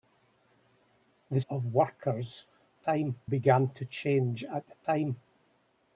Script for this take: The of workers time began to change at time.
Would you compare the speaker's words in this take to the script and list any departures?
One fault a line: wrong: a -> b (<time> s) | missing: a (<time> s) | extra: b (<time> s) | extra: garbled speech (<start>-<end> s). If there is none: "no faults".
no faults